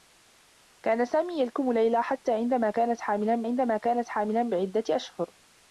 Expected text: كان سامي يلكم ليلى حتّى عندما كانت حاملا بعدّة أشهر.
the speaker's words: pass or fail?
fail